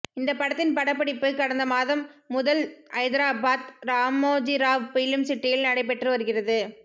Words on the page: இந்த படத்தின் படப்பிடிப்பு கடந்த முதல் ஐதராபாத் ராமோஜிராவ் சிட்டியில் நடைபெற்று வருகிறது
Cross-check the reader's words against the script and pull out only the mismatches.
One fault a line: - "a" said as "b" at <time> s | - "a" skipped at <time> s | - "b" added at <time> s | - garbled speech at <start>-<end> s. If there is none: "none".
- "மாதம்" added at 1.7 s
- "பிலிம்" added at 4.9 s